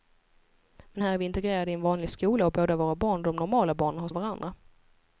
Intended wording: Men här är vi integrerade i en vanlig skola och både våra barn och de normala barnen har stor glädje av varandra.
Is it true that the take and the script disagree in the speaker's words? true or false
true